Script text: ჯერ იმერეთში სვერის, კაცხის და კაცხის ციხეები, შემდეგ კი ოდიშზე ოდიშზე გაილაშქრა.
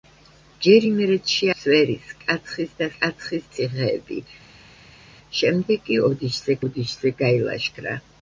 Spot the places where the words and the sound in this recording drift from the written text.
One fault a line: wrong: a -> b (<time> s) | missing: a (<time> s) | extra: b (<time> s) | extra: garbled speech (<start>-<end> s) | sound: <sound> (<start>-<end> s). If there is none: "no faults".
no faults